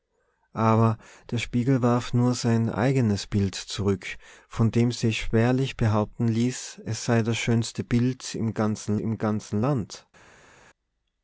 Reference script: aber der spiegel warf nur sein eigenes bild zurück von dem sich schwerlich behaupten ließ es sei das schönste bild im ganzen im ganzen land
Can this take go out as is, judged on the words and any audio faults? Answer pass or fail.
pass